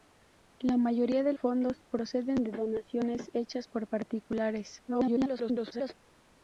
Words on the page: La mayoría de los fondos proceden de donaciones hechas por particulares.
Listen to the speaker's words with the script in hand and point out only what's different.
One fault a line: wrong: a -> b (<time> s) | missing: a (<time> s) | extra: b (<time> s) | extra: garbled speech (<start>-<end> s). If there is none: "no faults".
missing: los (1.3 s)
extra: garbled speech (4.9-5.9 s)